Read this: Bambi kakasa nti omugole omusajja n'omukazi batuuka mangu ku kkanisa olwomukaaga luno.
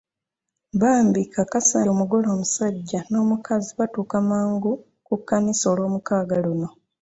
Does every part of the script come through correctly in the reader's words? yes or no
no